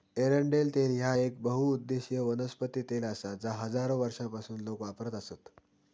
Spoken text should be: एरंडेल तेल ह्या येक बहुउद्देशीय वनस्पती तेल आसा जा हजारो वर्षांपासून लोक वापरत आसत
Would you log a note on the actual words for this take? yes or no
no